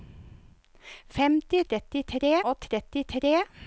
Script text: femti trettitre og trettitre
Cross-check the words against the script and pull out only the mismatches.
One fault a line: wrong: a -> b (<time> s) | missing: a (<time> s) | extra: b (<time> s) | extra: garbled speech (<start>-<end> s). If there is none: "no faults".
no faults